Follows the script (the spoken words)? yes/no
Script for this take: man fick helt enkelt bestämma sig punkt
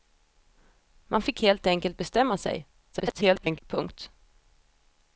no